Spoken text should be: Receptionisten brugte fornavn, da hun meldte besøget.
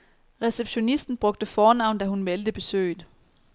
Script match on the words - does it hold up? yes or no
yes